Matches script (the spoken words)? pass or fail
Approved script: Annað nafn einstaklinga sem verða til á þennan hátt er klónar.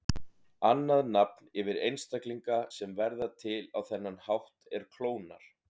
fail